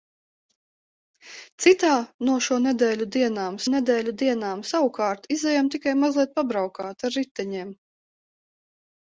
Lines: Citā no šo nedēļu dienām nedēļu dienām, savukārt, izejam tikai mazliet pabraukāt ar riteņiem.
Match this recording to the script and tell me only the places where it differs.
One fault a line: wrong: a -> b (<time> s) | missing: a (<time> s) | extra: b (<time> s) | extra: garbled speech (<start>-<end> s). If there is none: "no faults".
no faults